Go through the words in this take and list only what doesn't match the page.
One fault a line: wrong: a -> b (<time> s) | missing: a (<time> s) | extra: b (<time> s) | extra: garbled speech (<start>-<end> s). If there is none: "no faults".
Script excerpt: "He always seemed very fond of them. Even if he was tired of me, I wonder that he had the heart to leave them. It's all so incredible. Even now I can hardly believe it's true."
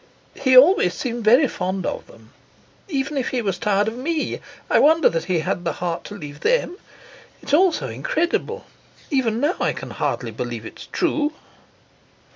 no faults